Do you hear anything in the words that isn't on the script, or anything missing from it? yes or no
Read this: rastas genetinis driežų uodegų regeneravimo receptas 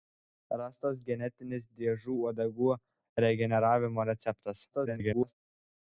yes